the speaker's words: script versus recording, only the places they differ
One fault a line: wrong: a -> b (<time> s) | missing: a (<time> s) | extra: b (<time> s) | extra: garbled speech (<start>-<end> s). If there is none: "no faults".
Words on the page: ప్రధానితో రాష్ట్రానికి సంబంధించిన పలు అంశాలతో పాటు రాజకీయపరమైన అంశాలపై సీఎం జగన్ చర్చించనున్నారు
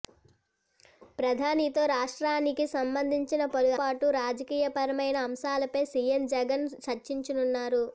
missing: అంశాలతో (3.7 s)